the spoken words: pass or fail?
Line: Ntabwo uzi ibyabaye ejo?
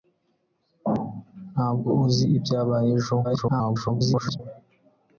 fail